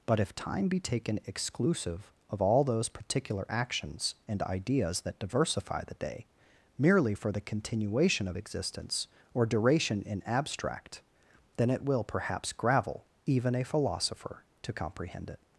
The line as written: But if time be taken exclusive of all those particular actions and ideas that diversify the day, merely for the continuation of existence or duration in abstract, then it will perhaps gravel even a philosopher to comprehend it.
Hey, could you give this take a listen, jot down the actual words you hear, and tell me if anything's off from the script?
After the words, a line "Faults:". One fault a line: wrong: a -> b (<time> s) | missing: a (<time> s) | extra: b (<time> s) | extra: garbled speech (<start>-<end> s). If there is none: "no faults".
But if time be taken exclusive of all those particular actions and ideas that diversify the day, merely for the continuation of existence or duration in abstract, then it will perhaps gravel even a philosopher to comprehend it.
Faults:
no faults